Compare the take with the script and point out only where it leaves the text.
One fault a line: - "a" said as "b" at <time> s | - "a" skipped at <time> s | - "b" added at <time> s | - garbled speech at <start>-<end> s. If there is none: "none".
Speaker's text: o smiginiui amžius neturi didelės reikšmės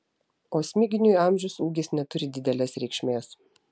- "ūgis" added at 1.7 s